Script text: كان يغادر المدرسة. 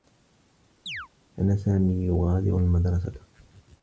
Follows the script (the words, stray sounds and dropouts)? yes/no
no